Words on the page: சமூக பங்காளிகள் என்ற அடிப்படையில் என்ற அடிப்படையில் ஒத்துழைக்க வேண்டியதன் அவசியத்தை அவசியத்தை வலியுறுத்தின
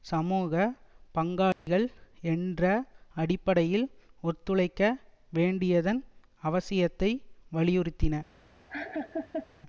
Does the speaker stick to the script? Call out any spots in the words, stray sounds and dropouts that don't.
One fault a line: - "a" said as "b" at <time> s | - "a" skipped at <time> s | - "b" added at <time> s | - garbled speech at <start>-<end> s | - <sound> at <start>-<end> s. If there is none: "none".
- dropout at 1.5-1.7 s
- "என்ற அடிப்படையில்" skipped at 3.9 s
- "அவசியத்தை" skipped at 7.1 s
- laugh at 8.7-9.5 s